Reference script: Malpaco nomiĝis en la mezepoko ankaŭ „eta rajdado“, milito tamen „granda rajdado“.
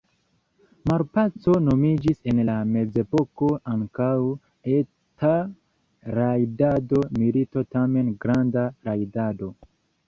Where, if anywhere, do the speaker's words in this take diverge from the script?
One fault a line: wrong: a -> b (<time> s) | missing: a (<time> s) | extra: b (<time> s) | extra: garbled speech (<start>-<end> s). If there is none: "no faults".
no faults